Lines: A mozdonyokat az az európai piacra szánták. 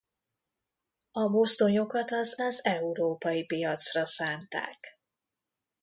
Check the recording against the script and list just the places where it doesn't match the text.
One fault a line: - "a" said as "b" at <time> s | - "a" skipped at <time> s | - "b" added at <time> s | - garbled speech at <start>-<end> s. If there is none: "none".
none